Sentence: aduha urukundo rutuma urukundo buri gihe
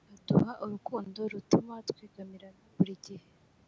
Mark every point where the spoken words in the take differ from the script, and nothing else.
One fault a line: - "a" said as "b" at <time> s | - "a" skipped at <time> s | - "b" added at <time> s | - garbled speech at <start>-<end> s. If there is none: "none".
- "urukundo" said as "twegamirana" at 1.9 s